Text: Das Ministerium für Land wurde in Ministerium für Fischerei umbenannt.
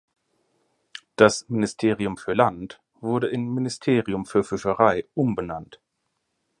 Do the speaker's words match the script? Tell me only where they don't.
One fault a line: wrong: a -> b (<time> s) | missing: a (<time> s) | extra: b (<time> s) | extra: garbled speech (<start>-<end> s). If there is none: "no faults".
no faults